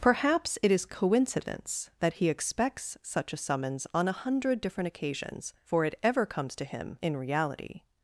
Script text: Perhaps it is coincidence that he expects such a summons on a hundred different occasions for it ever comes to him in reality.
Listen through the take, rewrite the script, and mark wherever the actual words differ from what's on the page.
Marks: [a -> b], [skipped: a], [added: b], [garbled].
Perhaps it is coincidence that he expects such a summons on a hundred different occasions for it ever comes to him in reality.